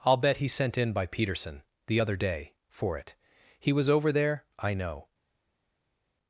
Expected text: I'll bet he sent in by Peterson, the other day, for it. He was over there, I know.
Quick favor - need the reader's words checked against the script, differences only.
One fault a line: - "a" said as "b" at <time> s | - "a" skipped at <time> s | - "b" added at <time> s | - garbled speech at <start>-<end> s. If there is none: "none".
none